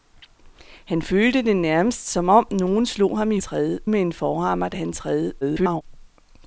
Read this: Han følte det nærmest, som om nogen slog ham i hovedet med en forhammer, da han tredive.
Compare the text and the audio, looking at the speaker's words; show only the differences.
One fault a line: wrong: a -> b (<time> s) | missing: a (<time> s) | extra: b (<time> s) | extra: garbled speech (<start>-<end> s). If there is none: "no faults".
wrong: hovedet -> tredive (3.4 s)
extra: garbled speech (5.4-5.8 s)